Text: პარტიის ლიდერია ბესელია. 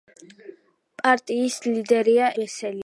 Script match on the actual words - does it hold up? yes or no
yes